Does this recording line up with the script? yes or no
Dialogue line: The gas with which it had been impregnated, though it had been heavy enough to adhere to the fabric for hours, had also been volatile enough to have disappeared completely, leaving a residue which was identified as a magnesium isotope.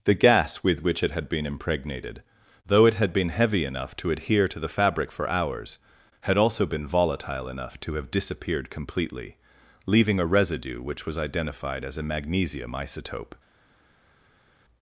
yes